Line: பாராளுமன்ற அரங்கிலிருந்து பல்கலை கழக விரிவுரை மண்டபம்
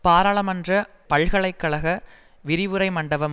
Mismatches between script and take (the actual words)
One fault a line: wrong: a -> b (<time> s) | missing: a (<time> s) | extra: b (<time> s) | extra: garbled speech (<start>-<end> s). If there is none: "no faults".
missing: அரங்கிலிருந்து (0.7 s)